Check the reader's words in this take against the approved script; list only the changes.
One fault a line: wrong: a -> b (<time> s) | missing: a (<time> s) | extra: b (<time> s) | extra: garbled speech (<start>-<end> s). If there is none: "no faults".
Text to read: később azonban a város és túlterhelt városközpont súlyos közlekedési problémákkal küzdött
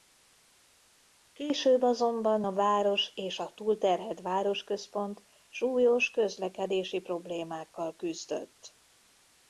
extra: a (3.4 s)